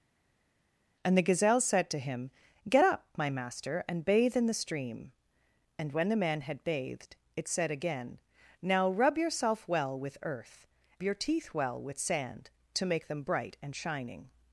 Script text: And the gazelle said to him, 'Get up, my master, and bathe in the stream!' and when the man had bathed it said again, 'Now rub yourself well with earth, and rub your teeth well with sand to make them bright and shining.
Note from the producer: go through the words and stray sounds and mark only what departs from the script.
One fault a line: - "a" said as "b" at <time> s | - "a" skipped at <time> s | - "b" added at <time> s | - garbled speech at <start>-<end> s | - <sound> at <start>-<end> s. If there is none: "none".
- "and rub" skipped at 10.6 s